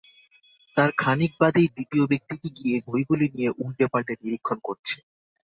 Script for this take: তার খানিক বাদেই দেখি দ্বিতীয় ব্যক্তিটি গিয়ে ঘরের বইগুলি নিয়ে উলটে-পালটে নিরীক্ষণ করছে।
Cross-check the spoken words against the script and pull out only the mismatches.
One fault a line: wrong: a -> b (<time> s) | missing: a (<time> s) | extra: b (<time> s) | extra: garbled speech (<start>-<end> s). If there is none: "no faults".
missing: দেখি (1.7 s)
missing: ঘরের (2.8 s)